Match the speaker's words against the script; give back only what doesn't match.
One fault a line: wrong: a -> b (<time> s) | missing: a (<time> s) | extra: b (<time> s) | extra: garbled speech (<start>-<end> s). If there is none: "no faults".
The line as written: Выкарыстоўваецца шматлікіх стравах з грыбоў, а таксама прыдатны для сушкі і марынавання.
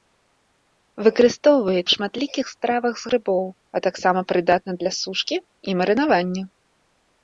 no faults